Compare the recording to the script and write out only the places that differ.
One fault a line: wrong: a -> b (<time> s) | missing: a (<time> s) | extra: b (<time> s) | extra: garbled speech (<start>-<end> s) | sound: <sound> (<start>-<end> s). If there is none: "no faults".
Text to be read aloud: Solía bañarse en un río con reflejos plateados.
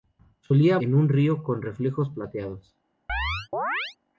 missing: bañarse (0.8 s)
sound: chirp (3.1-4.0 s)